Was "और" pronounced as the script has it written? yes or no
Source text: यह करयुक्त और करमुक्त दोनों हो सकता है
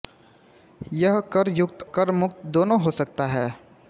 no